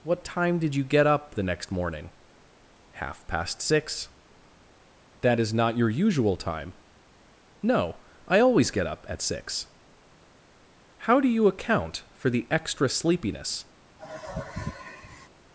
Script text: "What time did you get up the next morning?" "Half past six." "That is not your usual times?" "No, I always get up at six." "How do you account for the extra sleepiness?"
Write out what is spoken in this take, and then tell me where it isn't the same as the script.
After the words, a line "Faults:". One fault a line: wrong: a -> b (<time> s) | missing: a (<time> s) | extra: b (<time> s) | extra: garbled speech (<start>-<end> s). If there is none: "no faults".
"What time did you get up the next morning?" "Half past six." "That is not your usual time?" "No, I always get up at six." "How do you account for the extra sleepiness?"
Faults:
wrong: times -> time (6.4 s)